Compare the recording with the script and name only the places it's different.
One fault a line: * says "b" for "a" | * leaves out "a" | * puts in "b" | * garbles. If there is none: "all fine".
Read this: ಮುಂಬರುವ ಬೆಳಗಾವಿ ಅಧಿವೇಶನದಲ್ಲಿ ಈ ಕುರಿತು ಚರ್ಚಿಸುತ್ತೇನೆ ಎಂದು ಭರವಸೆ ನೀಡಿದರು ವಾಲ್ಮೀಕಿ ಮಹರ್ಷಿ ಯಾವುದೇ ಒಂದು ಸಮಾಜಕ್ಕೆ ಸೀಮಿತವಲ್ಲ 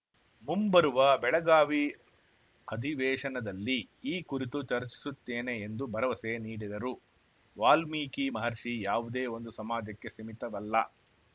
all fine